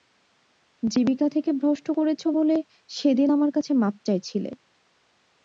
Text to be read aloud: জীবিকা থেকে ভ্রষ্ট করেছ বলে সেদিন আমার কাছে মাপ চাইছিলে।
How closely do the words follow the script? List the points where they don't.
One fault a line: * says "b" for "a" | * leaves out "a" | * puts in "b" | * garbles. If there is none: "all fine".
all fine